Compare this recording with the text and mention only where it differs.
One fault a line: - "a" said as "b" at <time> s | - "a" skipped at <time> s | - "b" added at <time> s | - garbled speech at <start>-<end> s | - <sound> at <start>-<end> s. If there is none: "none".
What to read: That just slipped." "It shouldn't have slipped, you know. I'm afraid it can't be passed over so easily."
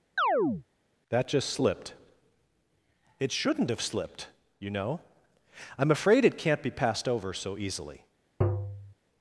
- chirp at 0.2-0.6 s
- tap at 8.4-8.9 s